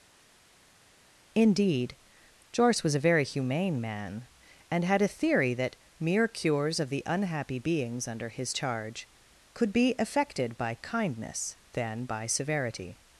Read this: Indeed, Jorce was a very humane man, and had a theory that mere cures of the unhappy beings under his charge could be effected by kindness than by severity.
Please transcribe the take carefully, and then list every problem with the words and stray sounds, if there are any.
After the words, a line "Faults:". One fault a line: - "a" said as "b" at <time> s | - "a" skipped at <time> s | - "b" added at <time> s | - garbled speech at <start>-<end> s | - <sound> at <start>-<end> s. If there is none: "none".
Indeed, Jorce was a very humane man, and had a theory that mere cures of the unhappy beings under his charge could be effected by kindness than by severity.
Faults:
none